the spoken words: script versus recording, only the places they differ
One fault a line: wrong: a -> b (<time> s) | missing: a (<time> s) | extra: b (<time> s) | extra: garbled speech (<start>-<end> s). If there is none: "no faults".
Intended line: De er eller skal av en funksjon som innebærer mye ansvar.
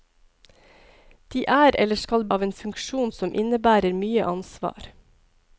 no faults